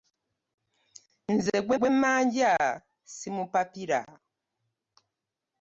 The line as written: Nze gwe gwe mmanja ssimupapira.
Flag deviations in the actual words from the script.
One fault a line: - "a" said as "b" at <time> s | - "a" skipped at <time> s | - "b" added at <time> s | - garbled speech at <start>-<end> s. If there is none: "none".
none